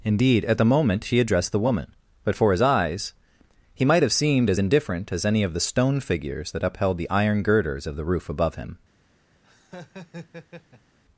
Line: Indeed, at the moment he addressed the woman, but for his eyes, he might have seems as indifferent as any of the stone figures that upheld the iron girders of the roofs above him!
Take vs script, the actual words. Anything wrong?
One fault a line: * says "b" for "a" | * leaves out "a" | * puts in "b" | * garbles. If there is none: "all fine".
* says "seemed" for "seems"
* says "roof" for "roofs"